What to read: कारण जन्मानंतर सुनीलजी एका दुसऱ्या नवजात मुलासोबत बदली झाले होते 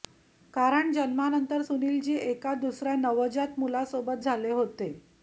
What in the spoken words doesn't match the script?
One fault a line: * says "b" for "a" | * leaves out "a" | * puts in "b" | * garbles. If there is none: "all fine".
* leaves out "बदली"